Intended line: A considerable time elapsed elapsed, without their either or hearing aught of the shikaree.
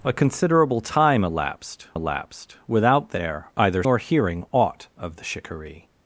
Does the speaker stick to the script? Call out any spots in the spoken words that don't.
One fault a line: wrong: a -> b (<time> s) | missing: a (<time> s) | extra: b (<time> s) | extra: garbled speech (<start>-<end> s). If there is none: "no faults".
no faults